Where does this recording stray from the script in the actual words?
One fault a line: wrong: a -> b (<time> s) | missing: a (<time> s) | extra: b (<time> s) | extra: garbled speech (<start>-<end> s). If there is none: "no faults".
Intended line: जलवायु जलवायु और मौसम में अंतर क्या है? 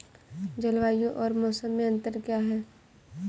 missing: जलवायु (1.1 s)